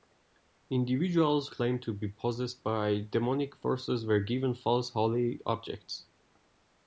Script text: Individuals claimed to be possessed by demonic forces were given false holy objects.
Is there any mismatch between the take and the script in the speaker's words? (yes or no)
no